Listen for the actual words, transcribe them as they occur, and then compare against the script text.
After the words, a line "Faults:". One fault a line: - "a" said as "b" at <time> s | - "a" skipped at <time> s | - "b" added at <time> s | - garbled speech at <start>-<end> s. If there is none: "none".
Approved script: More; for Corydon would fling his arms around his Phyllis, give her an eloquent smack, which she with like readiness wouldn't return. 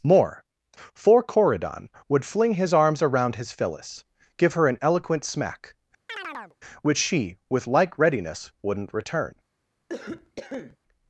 More; for Corydon would fling his arms around his Phyllis, give her an eloquent smack, which she with like readiness wouldn't return.
Faults:
none